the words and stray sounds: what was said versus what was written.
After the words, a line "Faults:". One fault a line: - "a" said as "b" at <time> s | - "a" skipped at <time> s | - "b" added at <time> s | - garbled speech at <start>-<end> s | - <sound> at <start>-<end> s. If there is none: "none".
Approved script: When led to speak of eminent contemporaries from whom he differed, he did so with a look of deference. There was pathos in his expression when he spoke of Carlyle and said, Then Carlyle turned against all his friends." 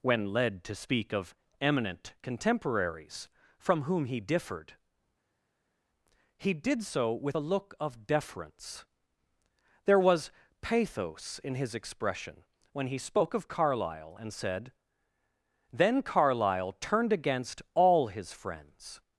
When led to speak of eminent contemporaries from whom he differed, he did so with a look of deference. There was pathos in his expression when he spoke of Carlyle and said, Then Carlyle turned against all his friends."
Faults:
none